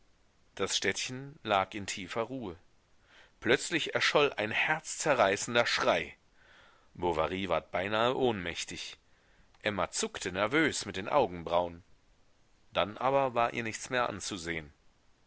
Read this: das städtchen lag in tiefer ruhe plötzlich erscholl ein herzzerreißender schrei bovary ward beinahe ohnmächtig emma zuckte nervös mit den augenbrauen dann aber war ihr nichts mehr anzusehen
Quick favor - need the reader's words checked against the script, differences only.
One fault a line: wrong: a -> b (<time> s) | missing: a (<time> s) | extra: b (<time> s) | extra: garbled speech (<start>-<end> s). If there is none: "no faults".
no faults